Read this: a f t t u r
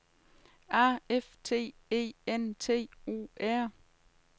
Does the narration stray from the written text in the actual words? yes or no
yes